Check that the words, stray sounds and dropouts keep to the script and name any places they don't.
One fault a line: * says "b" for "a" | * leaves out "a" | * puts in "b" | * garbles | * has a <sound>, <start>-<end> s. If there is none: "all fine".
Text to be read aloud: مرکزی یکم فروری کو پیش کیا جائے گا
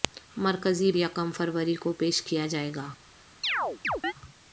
* has a chirp, 3.4-4.1 s